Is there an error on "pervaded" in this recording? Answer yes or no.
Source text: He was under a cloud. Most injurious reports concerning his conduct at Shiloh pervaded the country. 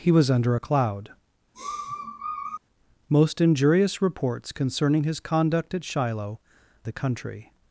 yes